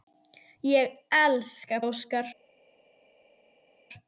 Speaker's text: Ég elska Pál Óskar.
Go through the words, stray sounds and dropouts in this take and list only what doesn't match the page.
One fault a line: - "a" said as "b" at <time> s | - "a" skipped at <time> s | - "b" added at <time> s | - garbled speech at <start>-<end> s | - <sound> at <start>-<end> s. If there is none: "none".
- "Pál" skipped at 1.8 s